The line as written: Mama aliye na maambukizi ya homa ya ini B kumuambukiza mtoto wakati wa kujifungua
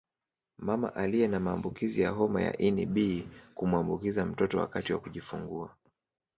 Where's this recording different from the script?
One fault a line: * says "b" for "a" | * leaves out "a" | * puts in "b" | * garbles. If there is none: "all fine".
all fine